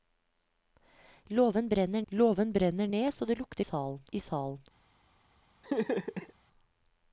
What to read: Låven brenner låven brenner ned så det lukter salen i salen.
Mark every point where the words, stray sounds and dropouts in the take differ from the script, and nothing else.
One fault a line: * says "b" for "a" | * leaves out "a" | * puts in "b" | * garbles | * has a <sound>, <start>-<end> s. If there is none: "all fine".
* has a laugh, 5.6-6.3 s